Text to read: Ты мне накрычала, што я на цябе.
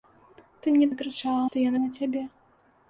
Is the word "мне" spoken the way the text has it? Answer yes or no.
yes